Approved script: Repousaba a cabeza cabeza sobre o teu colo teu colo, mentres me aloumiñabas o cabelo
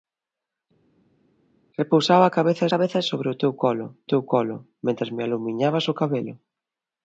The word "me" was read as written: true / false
true